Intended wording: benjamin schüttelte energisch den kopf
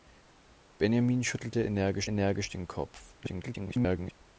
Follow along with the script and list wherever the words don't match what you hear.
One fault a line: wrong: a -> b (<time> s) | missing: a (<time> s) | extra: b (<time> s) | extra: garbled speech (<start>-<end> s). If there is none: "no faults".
extra: energisch (2.0 s)
extra: garbled speech (3.2-4.1 s)